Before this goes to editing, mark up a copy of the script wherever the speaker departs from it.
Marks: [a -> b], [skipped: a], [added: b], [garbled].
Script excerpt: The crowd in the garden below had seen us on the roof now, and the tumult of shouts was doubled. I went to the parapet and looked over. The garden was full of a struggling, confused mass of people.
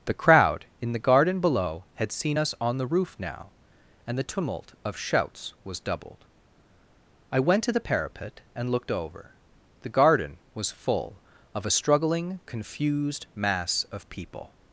The crowd in the garden below had seen us on the roof now, and the tumult of shouts was doubled. I went to the parapet and looked over. The garden was full of a struggling, confused mass of people.